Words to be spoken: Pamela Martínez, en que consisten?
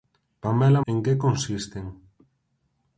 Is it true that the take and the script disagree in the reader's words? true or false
true